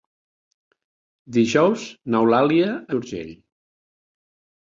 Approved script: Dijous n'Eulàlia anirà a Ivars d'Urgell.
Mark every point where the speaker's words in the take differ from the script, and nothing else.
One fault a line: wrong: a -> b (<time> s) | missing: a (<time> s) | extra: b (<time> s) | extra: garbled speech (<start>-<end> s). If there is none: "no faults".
missing: anirà a Ivars (2.7 s)